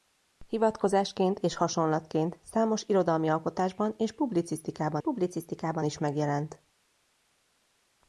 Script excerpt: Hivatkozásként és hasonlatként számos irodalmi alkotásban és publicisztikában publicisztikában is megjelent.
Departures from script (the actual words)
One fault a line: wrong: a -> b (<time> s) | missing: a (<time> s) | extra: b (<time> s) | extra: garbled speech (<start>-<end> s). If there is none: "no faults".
no faults